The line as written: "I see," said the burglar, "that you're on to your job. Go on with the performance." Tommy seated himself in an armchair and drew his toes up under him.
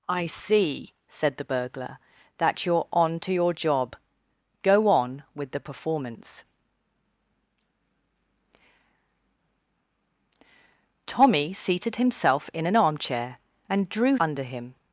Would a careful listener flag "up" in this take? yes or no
yes